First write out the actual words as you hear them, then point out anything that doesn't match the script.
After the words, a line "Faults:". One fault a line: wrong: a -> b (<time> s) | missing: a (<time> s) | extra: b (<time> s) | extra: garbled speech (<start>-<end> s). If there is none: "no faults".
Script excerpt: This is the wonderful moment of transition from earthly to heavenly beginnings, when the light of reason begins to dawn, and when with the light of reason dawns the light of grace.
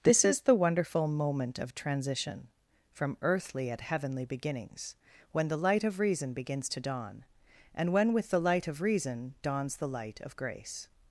This is the wonderful moment of transition from earthly at heavenly beginnings, when the light of reason begins to dawn, and when with the light of reason dawns the light of grace.
Faults:
wrong: to -> at (3.7 s)